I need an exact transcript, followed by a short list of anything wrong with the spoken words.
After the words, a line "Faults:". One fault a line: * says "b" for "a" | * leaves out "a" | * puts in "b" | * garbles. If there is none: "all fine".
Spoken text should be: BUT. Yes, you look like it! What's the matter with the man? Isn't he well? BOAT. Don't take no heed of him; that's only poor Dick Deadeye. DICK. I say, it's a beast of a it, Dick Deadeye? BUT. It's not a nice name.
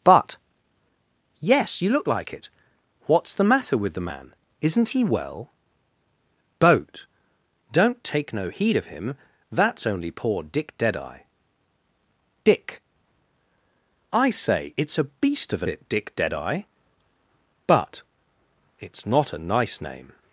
BUT. Yes, you look like it! What's the matter with the man? Isn't he well? BOAT. Don't take no heed of him; that's only poor Dick Deadeye. DICK. I say, it's a beast of a it, Dick Deadeye? BUT. It's not a nice name.
Faults:
all fine